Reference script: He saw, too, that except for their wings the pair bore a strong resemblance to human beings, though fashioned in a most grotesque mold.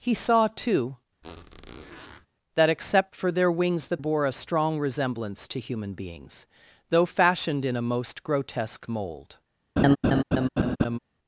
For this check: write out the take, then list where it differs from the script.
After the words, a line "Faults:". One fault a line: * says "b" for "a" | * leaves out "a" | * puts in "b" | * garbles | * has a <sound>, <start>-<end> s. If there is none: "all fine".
He saw, too, that except for their wings the bore a strong resemblance to human beings, though fashioned in a most grotesque mold.
Faults:
* has a squeak, 1.2-2.3 s
* leaves out "pair"
* has a laugh, 9.8-11.0 s